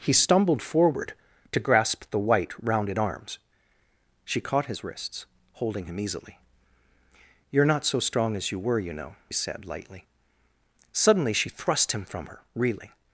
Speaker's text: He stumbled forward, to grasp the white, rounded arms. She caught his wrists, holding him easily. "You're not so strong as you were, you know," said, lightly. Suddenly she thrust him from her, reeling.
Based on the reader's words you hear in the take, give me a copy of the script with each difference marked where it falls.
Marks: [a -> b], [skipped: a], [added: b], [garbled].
He stumbled forward, to grasp the white, rounded arms. She caught his wrists, holding him easily. "You're not so strong as you were, you know," said, lightly. Suddenly she thrust him from her, reeling.